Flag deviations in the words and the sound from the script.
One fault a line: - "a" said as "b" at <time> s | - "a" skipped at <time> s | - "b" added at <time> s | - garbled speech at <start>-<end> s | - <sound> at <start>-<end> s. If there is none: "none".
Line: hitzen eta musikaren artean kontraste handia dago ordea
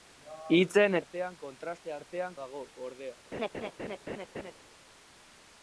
- "eta musikaren" skipped at 1.0 s
- "handia" said as "artean" at 2.0 s
- laugh at 3.3-4.5 s